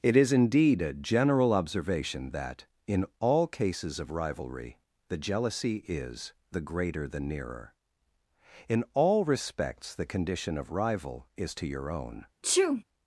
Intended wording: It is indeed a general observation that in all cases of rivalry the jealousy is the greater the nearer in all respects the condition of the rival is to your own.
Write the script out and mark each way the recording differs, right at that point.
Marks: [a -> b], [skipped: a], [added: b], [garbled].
It is indeed a general observation that in all cases of rivalry the jealousy is the greater the nearer in all respects the condition of [skipped: the] rival is to your own.